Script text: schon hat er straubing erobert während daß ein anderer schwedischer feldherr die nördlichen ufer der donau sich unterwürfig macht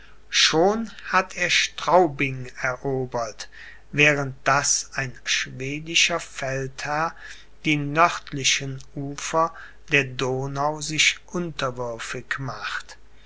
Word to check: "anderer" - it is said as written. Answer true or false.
false